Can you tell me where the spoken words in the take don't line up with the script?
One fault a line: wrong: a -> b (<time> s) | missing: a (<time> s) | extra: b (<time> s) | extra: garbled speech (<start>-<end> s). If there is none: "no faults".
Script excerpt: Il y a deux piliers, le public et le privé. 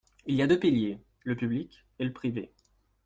no faults